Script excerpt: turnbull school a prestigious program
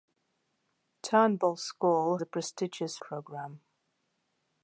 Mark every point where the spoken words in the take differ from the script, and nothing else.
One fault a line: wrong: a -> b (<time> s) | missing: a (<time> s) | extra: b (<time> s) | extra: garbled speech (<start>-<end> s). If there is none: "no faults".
no faults